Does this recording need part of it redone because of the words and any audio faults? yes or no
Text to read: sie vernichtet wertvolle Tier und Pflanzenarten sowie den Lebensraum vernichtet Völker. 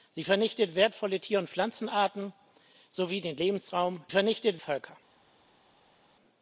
no